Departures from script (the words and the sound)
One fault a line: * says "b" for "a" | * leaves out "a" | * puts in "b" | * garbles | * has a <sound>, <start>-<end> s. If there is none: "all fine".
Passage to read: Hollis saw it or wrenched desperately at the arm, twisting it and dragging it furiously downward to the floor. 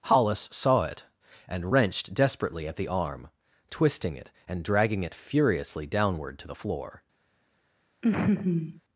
* says "and" for "or"
* has a laugh, 8.0-8.8 s